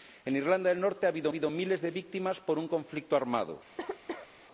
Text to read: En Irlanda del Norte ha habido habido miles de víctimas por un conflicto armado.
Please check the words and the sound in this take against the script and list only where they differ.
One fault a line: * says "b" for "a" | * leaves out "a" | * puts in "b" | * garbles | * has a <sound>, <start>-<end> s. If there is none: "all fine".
* has a cough, 3.8-4.3 s